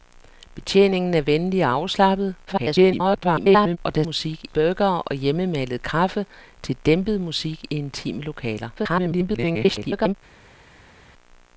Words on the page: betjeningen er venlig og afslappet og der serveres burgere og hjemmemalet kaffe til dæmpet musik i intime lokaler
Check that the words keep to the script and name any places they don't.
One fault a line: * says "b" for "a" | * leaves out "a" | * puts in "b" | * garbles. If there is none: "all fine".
* garbles
* says "musik" for "serveres"
* garbles